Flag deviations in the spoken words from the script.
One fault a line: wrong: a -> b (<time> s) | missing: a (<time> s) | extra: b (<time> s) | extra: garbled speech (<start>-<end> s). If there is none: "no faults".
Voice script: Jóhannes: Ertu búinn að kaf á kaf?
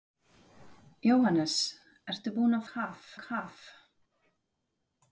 no faults